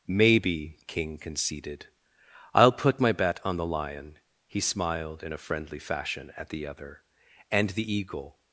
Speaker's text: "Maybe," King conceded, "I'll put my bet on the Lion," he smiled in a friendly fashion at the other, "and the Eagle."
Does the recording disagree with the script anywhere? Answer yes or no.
no